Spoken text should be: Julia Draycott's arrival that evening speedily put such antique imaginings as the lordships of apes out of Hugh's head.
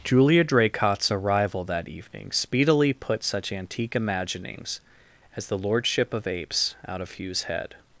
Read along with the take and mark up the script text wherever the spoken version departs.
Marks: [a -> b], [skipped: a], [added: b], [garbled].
Julia Draycott's arrival that evening speedily put such antique imaginings as the [lordships -> lordship] of apes out of Hugh's head.